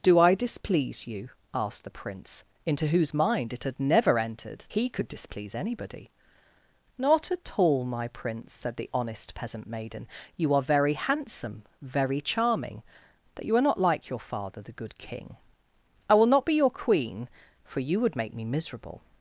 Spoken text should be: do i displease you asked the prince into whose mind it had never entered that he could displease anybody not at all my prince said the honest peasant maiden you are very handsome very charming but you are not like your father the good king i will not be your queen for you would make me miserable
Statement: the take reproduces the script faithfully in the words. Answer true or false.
false